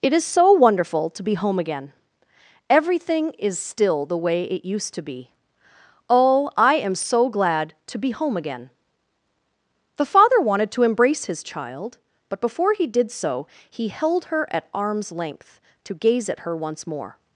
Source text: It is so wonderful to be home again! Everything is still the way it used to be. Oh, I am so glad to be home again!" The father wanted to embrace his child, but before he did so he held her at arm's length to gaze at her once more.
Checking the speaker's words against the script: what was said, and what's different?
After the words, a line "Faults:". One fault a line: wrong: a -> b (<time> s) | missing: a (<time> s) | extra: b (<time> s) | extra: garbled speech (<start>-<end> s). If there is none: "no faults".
It is so wonderful to be home again! Everything is still the way it used to be. Oh, I am so glad to be home again!" The father wanted to embrace his child, but before he did so he held her at arm's length to gaze at her once more.
Faults:
no faults